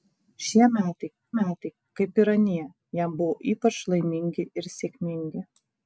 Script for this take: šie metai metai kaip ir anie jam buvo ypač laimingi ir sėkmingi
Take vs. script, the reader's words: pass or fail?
pass